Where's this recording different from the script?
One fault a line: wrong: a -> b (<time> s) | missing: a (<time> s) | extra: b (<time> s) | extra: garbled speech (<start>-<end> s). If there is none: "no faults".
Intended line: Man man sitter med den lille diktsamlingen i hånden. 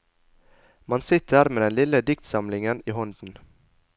missing: man (1.0 s)